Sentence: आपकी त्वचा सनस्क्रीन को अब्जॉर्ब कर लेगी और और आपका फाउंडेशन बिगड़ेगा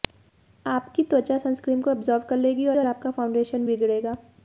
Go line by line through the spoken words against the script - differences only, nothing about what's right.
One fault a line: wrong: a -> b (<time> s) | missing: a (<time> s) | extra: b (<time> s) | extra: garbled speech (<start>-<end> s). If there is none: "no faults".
no faults